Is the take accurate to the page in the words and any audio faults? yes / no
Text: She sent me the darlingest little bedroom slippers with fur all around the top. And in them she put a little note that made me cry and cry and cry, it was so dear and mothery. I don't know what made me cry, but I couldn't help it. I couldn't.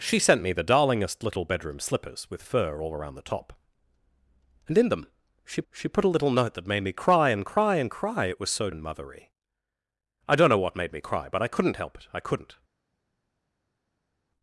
no